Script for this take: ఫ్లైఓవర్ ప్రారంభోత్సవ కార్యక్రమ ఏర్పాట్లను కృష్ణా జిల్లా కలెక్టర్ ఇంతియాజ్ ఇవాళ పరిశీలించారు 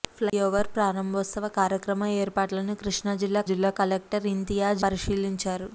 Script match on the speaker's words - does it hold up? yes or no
no